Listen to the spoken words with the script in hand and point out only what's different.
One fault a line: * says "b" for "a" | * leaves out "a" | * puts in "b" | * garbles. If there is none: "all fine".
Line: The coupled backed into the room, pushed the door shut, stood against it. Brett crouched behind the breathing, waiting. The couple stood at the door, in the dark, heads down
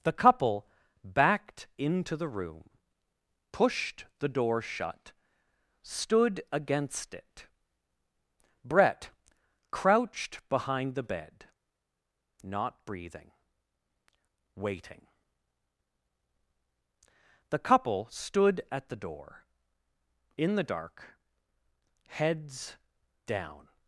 * says "couple" for "coupled"
* puts in "bed not"